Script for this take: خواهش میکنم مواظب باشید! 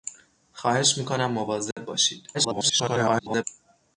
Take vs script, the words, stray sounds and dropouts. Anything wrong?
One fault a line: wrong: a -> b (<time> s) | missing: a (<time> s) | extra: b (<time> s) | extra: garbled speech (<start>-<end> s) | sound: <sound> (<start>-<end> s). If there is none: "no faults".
sound: dropout (1.7-1.8 s)
extra: garbled speech (2.3-3.4 s)